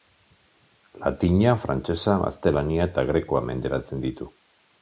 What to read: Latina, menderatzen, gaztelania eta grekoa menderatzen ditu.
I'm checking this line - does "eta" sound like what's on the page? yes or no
yes